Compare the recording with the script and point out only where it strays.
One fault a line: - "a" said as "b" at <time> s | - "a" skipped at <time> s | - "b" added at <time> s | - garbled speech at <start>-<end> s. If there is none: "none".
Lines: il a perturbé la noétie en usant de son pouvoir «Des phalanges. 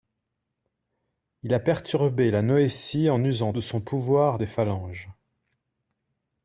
none